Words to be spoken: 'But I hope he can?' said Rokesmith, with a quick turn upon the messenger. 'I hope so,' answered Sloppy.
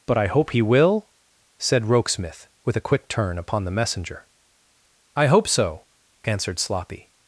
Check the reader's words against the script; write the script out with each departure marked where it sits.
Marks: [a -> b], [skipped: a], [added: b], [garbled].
'But I hope he [can?' -> will] said Rokesmith, with a quick turn upon the messenger. 'I hope so,' answered Sloppy.